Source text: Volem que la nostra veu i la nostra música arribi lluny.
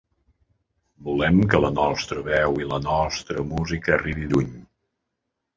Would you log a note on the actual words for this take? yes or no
no